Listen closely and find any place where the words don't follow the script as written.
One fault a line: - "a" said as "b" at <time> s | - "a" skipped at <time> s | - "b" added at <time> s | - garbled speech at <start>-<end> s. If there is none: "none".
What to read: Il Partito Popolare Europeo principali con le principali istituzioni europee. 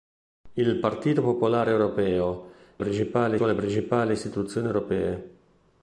none